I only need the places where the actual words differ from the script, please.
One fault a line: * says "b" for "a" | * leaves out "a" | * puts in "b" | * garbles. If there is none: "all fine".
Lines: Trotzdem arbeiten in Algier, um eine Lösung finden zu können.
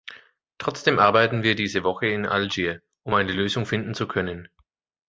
* puts in "wir diese Woche"